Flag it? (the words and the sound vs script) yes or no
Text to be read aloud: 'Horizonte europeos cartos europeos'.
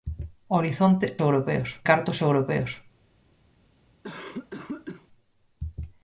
yes